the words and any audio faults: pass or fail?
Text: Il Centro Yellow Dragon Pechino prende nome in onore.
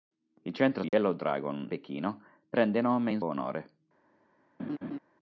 fail